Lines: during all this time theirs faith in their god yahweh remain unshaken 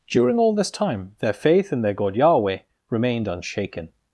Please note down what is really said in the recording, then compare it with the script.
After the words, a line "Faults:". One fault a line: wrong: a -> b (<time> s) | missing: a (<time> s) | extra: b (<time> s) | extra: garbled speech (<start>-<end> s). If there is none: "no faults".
during all this time their faith in their god yahweh remained unshaken
Faults:
wrong: theirs -> their (1.2 s)
wrong: remain -> remained (2.9 s)